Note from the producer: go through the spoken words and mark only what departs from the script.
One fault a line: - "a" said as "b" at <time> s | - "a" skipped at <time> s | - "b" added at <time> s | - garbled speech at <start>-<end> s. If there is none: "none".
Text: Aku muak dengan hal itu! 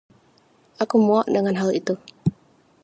none